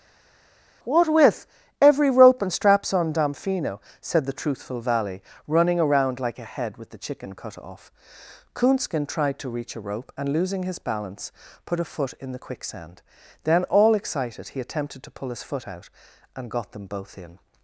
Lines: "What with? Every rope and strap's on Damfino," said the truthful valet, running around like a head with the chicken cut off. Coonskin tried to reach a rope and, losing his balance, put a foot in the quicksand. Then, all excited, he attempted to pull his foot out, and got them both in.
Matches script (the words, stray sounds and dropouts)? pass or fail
fail